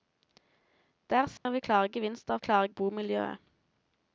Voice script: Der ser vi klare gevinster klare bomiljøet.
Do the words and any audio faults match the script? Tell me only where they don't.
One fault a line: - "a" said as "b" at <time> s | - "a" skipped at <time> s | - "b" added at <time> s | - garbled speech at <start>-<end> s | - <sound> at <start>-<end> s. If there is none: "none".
- dropout at 1.4-1.5 s